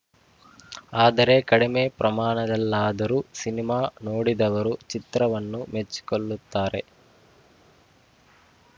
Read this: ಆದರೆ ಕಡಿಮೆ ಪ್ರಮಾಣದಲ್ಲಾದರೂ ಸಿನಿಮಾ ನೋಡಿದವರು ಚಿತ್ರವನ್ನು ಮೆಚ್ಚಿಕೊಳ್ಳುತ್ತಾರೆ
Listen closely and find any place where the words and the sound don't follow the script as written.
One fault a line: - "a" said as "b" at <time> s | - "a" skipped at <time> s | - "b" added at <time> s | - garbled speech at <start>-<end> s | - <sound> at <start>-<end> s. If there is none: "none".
none